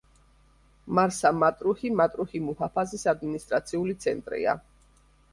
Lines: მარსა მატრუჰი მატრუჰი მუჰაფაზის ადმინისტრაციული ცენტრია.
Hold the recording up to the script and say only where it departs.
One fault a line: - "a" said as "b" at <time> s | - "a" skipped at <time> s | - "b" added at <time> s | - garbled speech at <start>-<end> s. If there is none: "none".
none